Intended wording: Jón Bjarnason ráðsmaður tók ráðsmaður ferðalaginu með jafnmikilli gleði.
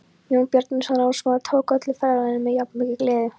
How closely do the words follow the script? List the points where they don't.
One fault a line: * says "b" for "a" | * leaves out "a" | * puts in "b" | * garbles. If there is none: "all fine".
* says "öllu" for "ráðsmaður"